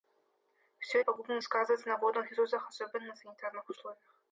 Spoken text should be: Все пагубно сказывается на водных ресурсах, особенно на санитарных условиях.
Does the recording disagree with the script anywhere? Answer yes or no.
no